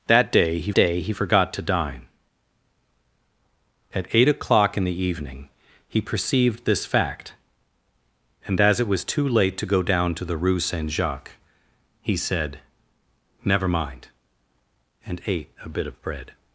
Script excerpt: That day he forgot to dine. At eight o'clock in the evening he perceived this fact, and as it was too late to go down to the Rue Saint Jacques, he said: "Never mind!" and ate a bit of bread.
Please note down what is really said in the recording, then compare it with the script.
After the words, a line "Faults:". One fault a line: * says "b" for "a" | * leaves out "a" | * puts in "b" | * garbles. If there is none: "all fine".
That day he day he forgot to dine. At eight o'clock in the evening he perceived this fact, and as it was too late to go down to the Rue Saint Jacques, he said: "Never mind!" and ate a bit of bread.
Faults:
* puts in "day he"